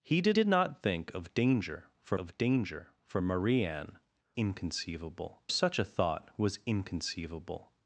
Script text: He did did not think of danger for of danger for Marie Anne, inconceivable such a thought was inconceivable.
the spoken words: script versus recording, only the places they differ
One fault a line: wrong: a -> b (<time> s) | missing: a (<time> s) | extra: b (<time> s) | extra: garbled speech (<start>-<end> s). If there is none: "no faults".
no faults